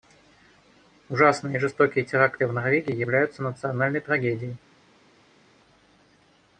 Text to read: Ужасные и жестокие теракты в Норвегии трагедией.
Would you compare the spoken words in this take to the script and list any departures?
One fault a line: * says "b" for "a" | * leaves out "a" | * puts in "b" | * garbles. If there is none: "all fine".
* puts in "являются национальной"